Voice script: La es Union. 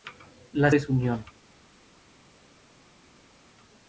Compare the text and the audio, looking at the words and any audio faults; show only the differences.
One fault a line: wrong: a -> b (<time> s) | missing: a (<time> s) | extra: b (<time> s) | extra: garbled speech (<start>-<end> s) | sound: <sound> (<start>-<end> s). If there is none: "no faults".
no faults